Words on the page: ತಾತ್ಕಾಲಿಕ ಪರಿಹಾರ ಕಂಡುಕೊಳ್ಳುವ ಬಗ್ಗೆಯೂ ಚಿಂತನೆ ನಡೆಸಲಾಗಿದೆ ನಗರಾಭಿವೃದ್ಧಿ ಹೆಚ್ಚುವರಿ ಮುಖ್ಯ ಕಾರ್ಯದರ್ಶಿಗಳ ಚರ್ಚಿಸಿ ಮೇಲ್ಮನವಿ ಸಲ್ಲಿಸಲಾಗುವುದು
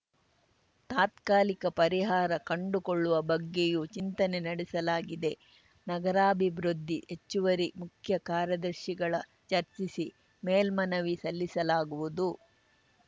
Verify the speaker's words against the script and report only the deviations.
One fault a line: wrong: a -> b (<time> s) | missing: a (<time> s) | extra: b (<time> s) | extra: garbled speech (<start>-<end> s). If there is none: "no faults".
no faults